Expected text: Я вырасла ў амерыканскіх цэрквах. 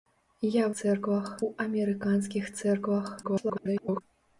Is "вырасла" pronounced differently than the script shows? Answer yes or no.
yes